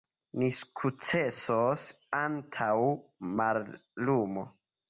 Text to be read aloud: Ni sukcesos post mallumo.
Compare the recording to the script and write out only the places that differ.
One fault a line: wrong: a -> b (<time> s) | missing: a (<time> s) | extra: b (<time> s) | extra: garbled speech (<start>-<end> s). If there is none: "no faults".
wrong: post -> antaŭ (2.2 s)